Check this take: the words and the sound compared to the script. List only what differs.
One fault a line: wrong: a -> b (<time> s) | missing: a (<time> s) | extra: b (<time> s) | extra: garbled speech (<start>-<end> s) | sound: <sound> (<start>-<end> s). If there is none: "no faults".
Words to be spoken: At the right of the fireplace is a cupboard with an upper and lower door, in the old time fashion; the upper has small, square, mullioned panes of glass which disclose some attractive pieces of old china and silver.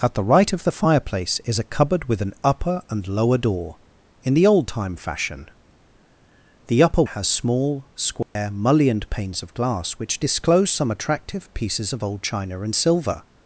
sound: dropout (8.2-8.4 s)